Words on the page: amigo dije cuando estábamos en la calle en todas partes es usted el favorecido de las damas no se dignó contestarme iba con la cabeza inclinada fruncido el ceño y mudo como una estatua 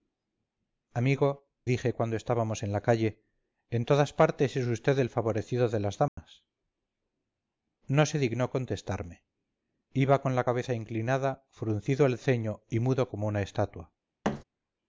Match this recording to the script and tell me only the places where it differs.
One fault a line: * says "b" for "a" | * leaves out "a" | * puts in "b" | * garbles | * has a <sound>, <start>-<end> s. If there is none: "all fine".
* has a dropout, 6.1-6.2 s
* has a thud, 14.2-14.4 s